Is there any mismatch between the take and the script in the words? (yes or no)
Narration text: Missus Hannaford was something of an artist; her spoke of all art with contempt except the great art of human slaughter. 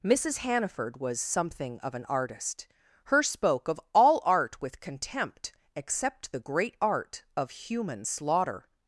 no